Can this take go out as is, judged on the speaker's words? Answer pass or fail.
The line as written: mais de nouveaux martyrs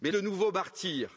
pass